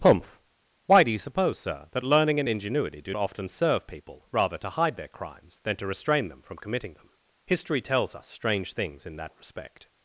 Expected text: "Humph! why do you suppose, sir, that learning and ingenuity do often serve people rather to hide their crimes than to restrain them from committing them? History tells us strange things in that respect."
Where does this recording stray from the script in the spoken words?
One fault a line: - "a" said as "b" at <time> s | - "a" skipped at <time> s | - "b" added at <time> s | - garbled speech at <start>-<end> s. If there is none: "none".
none